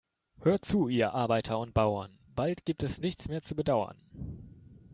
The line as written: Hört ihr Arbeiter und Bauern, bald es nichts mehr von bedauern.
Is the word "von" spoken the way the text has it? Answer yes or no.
no